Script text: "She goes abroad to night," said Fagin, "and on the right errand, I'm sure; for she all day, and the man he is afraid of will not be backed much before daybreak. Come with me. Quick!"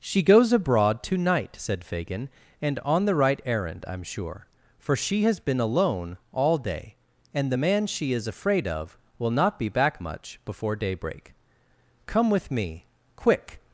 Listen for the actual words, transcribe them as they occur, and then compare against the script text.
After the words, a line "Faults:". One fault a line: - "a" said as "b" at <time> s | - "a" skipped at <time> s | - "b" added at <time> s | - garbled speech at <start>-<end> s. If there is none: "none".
"She goes abroad to night," said Fagin, "and on the right errand, I'm sure; for she has been alone all day, and the man she is afraid of will not be back much before daybreak. Come with me. Quick!"
Faults:
- "has been alone" added at 5.2 s
- "he" said as "she" at 7.9 s
- "backed" said as "back" at 9.7 s